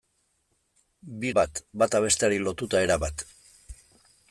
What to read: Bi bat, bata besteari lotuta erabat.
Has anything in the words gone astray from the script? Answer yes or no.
no